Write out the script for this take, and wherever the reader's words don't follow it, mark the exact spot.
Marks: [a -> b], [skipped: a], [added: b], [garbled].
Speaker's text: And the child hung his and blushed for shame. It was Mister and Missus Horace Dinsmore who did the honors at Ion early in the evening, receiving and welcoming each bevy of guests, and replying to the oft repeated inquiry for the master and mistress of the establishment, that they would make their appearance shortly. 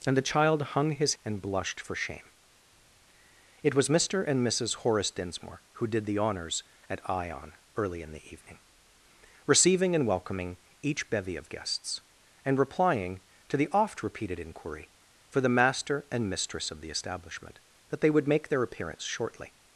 And the child hung his and blushed for shame. It was Mister and Missus Horace Dinsmore who did the honors at Ion early in the evening, receiving and welcoming each bevy of guests, and replying to the oft repeated inquiry for the master and mistress of the establishment, that they would make their appearance shortly.